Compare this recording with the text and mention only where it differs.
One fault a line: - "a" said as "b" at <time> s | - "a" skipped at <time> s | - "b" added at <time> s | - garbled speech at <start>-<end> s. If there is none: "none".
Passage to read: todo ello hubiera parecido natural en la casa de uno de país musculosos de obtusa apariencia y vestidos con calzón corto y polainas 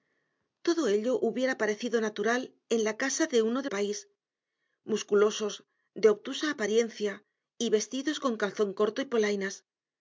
none